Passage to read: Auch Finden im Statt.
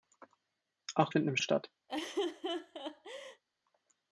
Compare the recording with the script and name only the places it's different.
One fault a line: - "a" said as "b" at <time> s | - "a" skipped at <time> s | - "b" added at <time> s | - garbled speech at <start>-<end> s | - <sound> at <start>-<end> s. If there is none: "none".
- laugh at 1.9-3.4 s